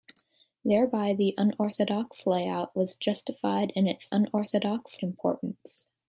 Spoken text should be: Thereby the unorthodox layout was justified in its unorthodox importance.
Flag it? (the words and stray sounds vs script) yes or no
no